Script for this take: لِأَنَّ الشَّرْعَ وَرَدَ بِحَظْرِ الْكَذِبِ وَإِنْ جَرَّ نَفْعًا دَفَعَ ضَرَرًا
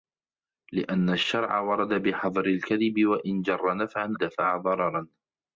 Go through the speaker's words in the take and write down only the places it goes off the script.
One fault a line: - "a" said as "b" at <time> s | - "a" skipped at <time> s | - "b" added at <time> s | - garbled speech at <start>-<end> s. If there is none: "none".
none